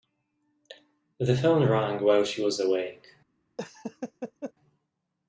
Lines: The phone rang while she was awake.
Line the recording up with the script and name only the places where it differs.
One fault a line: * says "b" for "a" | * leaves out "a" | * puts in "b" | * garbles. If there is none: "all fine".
all fine